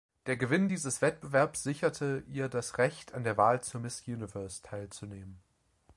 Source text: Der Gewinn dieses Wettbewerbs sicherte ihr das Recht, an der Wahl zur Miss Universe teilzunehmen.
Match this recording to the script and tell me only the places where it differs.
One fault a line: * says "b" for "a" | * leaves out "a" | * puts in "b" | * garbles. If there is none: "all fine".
all fine